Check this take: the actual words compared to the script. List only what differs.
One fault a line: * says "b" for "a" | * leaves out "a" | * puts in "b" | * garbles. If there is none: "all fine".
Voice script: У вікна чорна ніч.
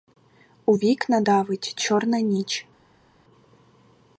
* puts in "давить"